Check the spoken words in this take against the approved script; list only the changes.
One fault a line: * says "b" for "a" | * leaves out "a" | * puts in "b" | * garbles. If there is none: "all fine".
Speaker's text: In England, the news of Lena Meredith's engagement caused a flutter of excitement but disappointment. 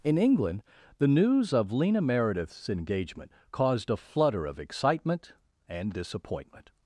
* says "and" for "but"